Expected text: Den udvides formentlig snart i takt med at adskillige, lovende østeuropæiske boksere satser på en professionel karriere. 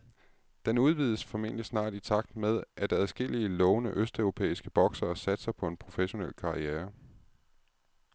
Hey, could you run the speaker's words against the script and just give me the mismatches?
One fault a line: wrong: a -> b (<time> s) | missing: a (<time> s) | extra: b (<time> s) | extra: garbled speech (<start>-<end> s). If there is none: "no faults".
no faults